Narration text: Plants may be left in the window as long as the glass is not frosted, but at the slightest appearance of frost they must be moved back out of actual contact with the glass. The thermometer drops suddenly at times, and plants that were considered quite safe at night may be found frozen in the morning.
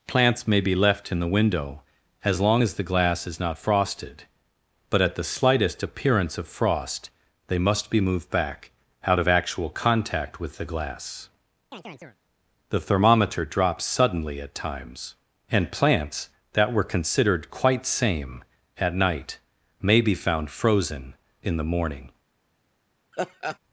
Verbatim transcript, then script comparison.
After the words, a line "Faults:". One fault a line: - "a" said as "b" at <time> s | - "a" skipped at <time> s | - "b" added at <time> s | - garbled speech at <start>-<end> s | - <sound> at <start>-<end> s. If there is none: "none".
Plants may be left in the window as long as the glass is not frosted, but at the slightest appearance of frost they must be moved back out of actual contact with the glass. The thermometer drops suddenly at times, and plants that were considered quite same at night may be found frozen in the morning.
Faults:
- chirp at 11.7-12.2 s
- "safe" said as "same" at 17.8 s
- laugh at 23.1-23.6 s